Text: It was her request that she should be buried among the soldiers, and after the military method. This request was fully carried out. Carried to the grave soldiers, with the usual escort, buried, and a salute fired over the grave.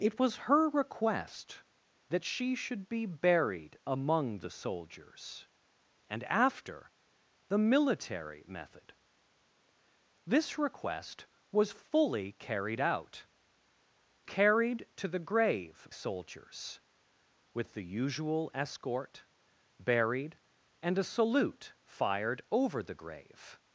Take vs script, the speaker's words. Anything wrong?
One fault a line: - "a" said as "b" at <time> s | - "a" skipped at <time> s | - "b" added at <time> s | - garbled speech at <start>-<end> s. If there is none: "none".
none